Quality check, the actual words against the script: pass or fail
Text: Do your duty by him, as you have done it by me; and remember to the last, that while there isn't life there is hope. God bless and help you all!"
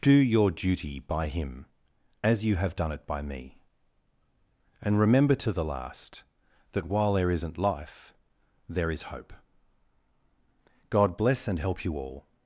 pass